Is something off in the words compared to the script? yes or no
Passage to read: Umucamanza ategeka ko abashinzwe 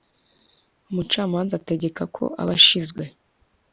no